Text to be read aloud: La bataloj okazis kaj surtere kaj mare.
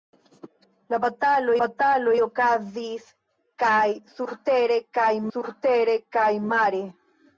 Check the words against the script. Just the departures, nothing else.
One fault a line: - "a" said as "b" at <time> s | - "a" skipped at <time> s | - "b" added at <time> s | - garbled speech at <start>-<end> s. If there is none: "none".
- "bataloj" added at 1.6 s
- "surtere kaj" added at 5.3 s